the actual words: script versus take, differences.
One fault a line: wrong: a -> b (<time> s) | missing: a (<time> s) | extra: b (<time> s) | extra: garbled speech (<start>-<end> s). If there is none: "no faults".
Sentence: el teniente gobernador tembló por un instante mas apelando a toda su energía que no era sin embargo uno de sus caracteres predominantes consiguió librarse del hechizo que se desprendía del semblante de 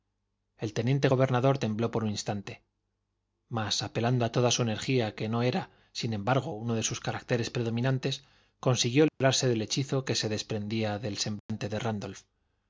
no faults